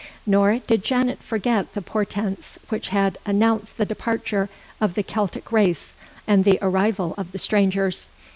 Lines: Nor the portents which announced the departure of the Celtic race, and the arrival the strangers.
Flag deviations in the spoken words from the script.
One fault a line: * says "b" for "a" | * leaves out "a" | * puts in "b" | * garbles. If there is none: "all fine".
* puts in "did Janet forget"
* puts in "had"
* puts in "of"